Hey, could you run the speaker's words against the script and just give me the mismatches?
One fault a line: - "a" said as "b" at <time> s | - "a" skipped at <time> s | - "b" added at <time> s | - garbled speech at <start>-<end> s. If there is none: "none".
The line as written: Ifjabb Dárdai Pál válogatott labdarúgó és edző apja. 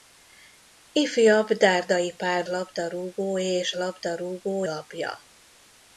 - "válogatott" skipped at 2.5 s
- "edző" said as "labdarúgó" at 3.7 s